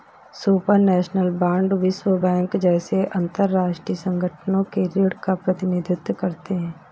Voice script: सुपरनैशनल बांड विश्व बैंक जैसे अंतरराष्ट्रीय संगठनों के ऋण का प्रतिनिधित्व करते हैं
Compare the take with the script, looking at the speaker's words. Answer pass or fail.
pass